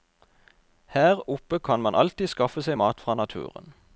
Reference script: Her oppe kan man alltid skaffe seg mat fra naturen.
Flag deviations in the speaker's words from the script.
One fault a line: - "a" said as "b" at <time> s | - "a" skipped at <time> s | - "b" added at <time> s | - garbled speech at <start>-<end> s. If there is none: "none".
none